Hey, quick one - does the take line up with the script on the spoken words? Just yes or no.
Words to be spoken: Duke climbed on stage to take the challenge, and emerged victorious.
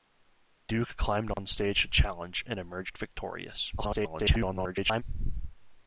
no